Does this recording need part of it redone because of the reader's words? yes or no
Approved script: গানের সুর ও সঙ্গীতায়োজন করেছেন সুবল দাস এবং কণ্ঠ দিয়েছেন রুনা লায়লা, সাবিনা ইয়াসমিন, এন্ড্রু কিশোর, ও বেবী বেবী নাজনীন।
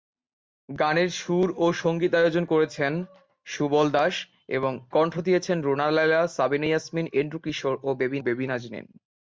no